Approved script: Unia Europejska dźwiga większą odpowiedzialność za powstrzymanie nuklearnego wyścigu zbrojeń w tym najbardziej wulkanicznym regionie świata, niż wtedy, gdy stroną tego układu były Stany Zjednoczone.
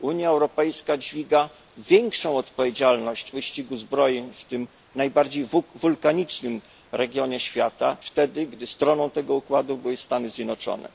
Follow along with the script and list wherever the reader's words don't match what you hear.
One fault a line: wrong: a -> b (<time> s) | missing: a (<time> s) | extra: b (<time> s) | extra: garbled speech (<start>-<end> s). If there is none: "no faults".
missing: za powstrzymanie nuklearnego (3.3 s)
missing: niż (8.0 s)